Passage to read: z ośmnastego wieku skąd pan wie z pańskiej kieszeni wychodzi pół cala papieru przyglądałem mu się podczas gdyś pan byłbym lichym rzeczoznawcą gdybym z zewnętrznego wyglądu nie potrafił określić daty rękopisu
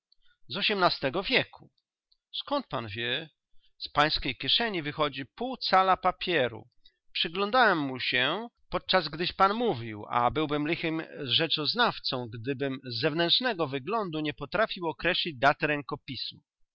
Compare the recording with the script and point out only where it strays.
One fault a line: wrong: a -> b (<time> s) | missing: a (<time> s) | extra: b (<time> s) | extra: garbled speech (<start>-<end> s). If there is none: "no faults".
extra: mówił a (9.5 s)